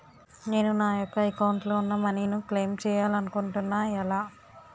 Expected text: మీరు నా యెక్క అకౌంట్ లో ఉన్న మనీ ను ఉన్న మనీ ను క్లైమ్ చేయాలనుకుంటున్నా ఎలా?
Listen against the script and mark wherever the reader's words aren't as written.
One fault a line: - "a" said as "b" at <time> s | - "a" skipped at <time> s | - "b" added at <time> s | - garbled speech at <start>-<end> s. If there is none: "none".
- "మీరు" said as "నేను" at 0.4 s
- "ఉన్న మనీ ను" skipped at 2.4 s